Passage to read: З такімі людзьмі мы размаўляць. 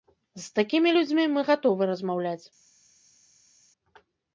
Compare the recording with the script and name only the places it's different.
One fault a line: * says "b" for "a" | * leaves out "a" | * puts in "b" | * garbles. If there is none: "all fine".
* puts in "гатовы"